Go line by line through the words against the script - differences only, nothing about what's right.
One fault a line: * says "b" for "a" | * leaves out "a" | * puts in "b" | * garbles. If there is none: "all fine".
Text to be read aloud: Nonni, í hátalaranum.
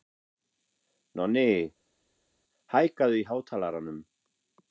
* puts in "hækkaðu"